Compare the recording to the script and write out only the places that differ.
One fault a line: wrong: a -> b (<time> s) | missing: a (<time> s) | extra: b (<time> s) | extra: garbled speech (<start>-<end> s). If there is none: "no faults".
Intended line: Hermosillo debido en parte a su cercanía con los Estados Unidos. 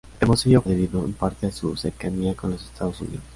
no faults